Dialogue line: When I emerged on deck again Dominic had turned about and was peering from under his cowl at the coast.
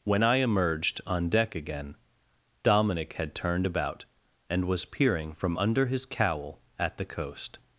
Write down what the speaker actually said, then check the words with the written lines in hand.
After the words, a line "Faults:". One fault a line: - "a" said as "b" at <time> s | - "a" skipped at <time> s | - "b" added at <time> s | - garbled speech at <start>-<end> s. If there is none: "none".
When I emerged on deck again Dominic had turned about and was peering from under his cowl at the coast.
Faults:
none